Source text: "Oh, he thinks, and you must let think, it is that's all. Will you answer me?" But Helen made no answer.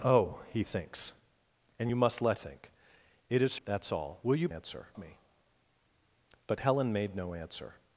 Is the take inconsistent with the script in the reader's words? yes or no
no